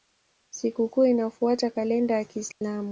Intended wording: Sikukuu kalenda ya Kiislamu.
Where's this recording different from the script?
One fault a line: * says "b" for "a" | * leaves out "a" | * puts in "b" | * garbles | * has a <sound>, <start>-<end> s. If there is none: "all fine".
* puts in "inafuata"
* has a dropout, 2.5-2.6 s